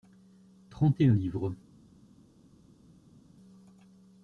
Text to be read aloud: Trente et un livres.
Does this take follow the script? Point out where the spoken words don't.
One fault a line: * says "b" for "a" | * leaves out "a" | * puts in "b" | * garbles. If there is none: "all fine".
all fine